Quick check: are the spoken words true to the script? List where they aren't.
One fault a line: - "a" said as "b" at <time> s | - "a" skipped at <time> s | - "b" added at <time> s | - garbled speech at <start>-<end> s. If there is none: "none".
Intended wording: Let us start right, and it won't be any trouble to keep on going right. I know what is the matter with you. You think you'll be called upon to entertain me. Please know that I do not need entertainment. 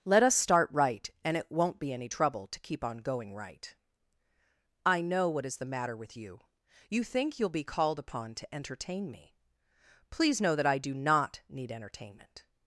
none